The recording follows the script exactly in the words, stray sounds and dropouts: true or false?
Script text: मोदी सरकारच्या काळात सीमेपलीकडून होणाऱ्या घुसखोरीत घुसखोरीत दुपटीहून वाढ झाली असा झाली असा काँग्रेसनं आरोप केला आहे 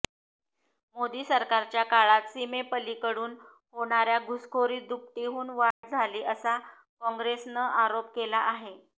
false